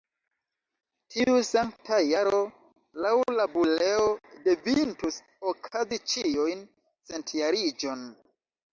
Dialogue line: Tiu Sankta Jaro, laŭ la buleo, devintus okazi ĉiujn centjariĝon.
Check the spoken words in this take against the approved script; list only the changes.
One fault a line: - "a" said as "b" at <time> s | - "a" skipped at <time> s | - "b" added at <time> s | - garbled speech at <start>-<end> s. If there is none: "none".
none